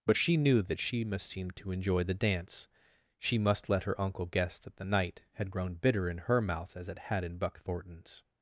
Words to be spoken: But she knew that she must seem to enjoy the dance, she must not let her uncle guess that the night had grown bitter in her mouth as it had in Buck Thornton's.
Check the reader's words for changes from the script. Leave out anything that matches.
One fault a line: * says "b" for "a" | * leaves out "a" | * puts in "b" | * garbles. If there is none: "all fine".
* leaves out "not"